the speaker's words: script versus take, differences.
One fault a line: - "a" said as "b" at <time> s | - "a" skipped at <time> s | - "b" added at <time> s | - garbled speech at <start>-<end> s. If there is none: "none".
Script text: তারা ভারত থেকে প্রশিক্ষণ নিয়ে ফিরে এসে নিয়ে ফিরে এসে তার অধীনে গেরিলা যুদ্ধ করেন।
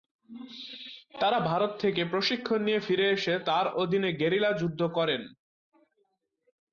- "নিয়ে ফিরে এসে" skipped at 3.3 s